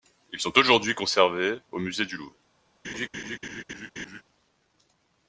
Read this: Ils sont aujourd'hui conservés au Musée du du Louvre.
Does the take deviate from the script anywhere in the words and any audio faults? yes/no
yes